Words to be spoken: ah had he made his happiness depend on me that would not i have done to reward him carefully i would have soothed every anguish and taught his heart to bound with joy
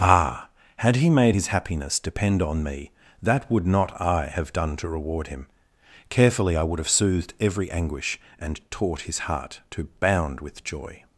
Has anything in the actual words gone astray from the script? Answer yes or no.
no